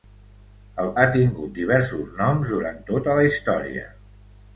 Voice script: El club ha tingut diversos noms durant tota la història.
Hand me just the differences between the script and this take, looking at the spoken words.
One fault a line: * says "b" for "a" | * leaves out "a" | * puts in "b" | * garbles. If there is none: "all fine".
* leaves out "club"